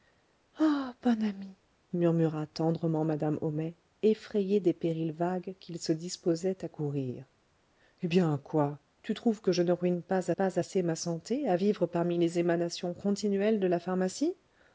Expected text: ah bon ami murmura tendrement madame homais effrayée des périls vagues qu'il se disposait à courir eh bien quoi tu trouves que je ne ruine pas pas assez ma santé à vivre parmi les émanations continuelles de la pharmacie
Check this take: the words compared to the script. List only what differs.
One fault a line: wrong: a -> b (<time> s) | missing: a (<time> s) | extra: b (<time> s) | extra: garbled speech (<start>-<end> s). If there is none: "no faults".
no faults